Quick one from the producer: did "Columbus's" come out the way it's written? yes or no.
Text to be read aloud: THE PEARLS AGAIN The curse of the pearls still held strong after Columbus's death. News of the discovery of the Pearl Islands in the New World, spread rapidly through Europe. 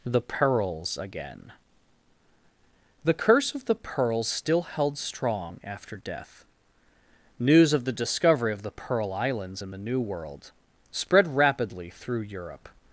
no